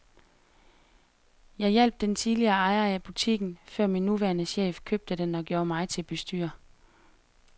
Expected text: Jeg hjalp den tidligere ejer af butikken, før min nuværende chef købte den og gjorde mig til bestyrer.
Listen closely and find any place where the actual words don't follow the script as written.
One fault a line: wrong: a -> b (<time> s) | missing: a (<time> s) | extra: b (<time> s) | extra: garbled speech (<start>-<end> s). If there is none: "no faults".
no faults